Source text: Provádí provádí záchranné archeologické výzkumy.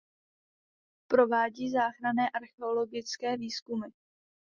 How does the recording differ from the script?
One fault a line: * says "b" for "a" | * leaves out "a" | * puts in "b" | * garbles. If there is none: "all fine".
* leaves out "provádí"